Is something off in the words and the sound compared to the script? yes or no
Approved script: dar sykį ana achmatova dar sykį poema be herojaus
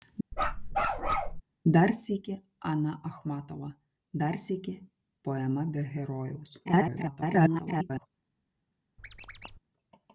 yes